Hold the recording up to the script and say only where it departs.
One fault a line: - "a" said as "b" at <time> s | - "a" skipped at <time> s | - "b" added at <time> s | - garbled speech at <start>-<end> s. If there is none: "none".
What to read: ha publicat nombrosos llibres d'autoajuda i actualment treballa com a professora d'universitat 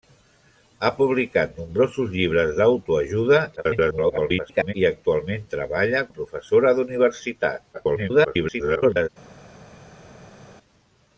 - garbled speech at 3.6-4.7 s
- "com" skipped at 6.0 s
- garbled speech at 7.7-9.1 s